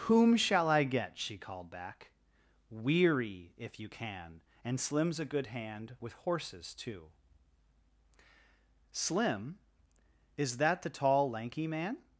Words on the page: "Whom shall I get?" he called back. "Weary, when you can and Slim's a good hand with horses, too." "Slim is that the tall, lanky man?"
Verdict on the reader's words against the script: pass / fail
fail